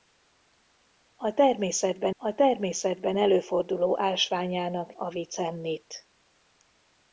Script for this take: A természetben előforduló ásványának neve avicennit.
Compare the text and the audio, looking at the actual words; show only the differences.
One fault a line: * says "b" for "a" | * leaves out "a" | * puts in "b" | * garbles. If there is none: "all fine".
* puts in "a természetben"
* leaves out "neve"